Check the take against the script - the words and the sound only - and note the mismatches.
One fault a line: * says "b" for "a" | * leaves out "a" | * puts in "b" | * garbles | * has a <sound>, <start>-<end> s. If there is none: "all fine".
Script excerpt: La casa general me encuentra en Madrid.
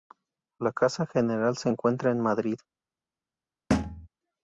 * says "se" for "me"
* has a thud, 3.7-4.1 s